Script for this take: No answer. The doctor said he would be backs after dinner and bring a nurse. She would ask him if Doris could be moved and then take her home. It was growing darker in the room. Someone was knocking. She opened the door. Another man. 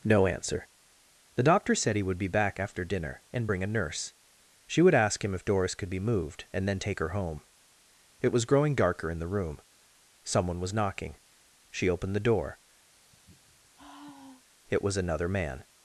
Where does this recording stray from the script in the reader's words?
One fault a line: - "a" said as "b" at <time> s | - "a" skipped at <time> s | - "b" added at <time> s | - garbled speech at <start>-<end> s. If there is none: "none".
- "backs" said as "back" at 2.3 s
- "It was" added at 14.7 s